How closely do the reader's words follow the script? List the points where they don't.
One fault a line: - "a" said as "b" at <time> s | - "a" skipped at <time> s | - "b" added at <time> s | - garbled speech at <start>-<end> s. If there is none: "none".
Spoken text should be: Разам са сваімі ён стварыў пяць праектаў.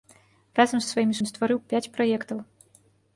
none